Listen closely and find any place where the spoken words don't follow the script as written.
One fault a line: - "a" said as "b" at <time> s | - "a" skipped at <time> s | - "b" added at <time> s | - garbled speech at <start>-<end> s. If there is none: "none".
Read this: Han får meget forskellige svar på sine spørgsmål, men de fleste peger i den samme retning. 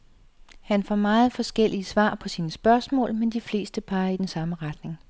none